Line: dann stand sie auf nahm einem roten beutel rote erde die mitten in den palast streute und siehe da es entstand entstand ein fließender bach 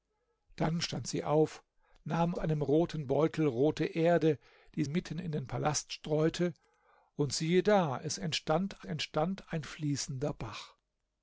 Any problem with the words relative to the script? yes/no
no